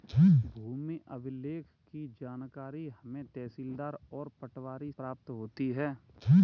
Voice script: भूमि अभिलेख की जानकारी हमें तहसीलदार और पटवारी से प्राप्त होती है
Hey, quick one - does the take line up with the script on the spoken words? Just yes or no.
no